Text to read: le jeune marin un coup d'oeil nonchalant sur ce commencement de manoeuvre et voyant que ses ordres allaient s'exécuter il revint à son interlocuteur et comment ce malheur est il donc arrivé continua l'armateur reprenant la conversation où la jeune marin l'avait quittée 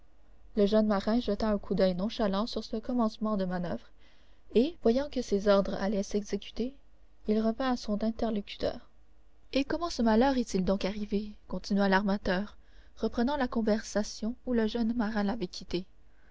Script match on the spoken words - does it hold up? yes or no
no